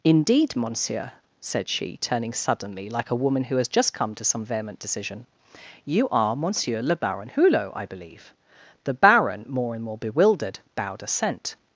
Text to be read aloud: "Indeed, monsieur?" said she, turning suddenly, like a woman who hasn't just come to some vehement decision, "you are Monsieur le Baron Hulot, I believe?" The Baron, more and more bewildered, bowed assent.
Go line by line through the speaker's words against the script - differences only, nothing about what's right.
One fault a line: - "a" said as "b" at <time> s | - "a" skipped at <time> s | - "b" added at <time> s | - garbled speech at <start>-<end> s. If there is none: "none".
- "hasn't" said as "has" at 3.6 s